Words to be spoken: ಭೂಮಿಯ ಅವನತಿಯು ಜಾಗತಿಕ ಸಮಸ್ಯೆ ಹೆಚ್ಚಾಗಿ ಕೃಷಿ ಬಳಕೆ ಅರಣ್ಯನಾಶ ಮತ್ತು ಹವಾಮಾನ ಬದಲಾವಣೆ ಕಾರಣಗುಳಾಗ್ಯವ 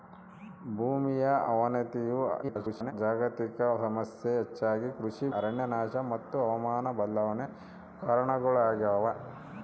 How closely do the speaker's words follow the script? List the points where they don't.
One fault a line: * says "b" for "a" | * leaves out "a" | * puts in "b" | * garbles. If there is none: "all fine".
* garbles
* leaves out "ಬಳಕೆ"